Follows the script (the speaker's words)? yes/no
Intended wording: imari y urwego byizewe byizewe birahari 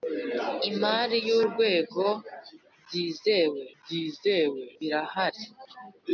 yes